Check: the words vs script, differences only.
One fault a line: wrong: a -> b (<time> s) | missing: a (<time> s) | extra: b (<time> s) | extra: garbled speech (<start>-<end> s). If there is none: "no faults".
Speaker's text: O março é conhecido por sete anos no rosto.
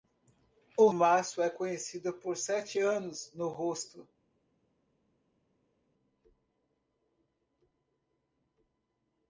no faults